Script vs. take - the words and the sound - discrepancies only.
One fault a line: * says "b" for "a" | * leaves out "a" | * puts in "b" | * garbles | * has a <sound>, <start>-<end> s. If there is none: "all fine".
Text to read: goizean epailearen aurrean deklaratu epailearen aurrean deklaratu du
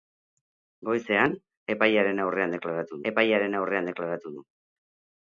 all fine